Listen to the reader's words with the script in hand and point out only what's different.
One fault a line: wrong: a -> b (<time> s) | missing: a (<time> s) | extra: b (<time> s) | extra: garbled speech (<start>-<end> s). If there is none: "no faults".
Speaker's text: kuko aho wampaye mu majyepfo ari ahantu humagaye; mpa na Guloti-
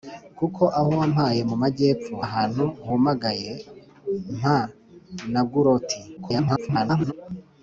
missing: ari (2.1 s)
extra: garbled speech (6.2-7.1 s)